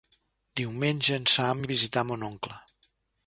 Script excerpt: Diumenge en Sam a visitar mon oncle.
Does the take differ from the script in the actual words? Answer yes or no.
no